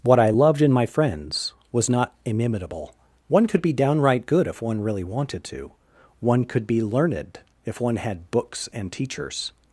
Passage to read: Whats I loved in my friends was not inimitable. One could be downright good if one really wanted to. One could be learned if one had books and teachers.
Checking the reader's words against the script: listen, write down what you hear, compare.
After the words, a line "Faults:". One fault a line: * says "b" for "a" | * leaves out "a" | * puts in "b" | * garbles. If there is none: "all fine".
What I loved in my friends was not inimitable. One could be downright good if one really wanted to. One could be learned if one had books and teachers.
Faults:
* says "What" for "Whats"